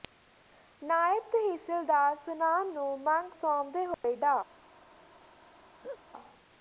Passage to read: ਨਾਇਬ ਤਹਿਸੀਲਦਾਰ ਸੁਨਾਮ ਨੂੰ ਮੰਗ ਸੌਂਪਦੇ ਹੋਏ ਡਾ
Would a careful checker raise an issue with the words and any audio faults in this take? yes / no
yes